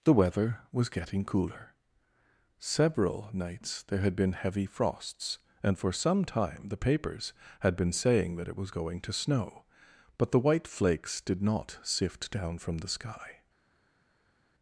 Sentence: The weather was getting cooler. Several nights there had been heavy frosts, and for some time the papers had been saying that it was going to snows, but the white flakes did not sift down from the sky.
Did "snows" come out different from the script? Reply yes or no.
yes